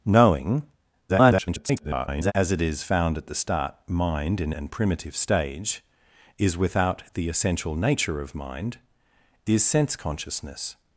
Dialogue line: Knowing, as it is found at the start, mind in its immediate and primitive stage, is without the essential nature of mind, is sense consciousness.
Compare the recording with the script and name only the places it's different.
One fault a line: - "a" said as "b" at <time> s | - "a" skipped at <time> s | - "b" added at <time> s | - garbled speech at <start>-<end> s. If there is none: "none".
- garbled speech at 1.1-2.3 s
- "its immediate" skipped at 4.5 s